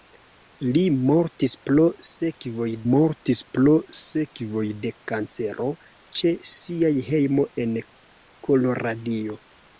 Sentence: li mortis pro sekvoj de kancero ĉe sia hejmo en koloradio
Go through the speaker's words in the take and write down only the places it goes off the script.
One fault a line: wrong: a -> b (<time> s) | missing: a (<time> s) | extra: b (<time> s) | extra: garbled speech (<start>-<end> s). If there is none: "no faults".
extra: mortis pro sekvoj (2.9 s)